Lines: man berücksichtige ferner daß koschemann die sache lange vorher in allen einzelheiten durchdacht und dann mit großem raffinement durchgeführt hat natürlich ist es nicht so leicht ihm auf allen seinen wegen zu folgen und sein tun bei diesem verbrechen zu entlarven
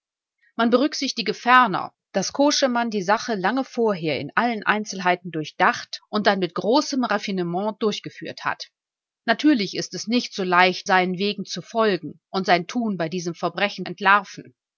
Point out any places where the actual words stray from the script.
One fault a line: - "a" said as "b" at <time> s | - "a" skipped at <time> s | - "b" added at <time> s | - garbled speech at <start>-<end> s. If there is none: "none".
- "ihm auf allen" skipped at 10.9 s
- "zu" skipped at 13.9 s